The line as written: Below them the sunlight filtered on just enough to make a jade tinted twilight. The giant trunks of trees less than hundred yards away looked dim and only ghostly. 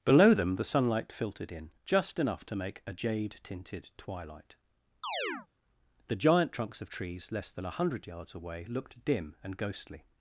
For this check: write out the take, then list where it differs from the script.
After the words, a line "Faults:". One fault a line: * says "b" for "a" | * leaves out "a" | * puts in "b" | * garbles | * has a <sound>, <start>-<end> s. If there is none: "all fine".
Below them the sunlight filtered in just enough to make a jade tinted twilight. The giant trunks of trees less than a hundred yards away looked dim and ghostly.
Faults:
* says "in" for "on"
* has a chirp, 5.0-5.5 s
* puts in "a"
* leaves out "only"